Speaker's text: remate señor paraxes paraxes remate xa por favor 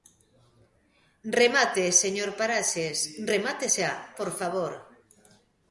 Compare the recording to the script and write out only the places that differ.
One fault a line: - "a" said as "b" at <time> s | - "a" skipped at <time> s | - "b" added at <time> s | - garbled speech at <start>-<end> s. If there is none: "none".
- "paraxes" skipped at 3.0 s